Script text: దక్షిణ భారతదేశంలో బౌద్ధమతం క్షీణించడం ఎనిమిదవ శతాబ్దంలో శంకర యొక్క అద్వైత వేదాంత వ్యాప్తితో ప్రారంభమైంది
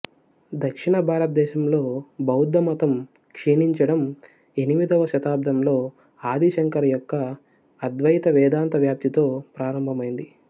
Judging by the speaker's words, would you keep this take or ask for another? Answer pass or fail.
fail